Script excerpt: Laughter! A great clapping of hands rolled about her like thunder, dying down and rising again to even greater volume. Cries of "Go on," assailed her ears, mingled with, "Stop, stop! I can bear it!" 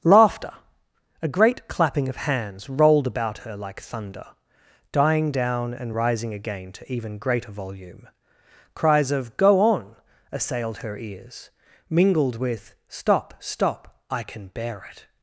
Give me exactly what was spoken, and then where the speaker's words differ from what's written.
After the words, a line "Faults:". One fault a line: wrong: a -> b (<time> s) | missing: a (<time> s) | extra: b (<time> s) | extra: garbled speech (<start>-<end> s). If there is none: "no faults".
Laughter! A great clapping of hands rolled about her like thunder, dying down and rising again to even greater volume. Cries of "Go on," assailed her ears, mingled with, "Stop, stop! I can bear it!"
Faults:
no faults